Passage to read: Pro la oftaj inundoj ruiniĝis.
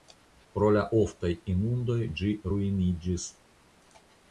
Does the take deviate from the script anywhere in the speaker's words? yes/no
yes